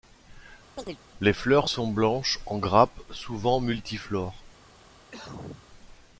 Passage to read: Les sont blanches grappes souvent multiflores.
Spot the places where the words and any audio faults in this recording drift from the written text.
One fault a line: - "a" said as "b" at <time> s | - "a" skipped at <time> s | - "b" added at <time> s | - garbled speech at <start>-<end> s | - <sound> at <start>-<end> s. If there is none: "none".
- chirp at 0.8-1.0 s
- "fleurs" added at 1.3 s
- "en" added at 2.5 s
- cough at 5.1-5.7 s